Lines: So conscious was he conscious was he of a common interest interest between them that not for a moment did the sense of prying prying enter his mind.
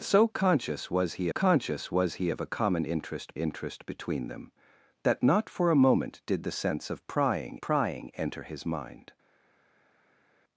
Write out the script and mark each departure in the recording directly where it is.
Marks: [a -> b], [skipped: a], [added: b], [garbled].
So conscious was he conscious was he of a common interest interest between them that not for a moment did the sense of prying prying enter his mind.